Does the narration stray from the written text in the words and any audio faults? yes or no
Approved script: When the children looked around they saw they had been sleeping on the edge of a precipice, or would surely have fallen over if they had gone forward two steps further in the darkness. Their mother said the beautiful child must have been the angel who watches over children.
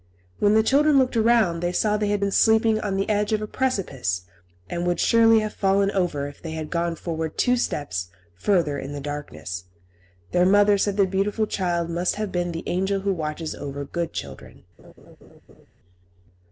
yes